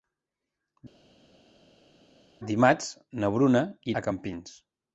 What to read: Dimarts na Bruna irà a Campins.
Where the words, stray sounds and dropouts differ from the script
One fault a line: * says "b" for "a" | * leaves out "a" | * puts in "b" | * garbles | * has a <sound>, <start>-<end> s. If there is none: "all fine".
* leaves out "irà"